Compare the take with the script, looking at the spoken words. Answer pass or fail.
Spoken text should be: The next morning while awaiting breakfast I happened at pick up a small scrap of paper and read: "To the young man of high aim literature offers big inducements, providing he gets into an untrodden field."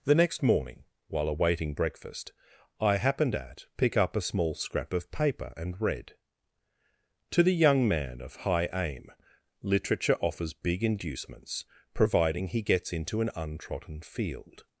pass